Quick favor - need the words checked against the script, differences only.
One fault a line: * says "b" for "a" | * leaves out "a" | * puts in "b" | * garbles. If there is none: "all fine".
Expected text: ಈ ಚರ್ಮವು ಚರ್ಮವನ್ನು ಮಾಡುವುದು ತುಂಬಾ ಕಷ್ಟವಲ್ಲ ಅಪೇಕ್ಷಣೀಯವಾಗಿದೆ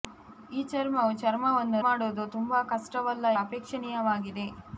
all fine